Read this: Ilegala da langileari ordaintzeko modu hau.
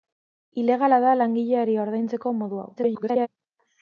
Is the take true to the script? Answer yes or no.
no